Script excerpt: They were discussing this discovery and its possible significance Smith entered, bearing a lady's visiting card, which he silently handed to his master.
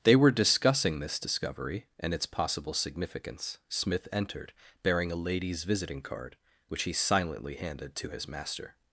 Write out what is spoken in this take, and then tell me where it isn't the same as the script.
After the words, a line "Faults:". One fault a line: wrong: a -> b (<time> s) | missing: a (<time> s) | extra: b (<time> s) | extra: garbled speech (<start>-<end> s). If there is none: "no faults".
They were discussing this discovery and its possible significance Smith entered, bearing a lady's visiting card, which he silently handed to his master.
Faults:
no faults